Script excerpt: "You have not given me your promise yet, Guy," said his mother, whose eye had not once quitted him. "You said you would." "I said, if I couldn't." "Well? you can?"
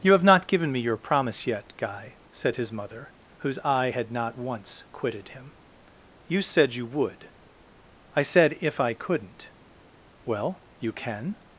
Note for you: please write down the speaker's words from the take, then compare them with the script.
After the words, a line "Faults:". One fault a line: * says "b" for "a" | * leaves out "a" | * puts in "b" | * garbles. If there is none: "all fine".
"You have not given me your promise yet, Guy," said his mother, whose eye had not once quitted him. "You said you would." "I said, if I couldn't." "Well? you can?"
Faults:
all fine